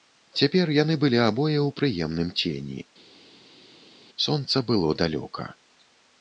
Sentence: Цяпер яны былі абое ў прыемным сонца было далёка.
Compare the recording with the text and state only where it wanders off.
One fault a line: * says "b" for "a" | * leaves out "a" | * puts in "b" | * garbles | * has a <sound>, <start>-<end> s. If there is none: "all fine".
* puts in "цені"